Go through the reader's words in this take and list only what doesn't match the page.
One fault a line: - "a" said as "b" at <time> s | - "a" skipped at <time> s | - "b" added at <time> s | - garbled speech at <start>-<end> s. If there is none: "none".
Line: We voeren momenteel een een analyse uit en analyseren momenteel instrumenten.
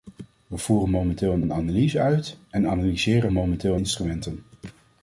none